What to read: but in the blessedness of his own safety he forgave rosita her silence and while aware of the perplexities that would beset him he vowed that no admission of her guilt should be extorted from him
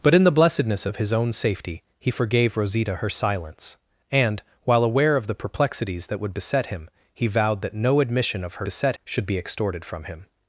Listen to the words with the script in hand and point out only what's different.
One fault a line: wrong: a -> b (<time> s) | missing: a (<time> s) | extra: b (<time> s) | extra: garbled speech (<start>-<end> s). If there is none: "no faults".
wrong: guilt -> beset (8.6 s)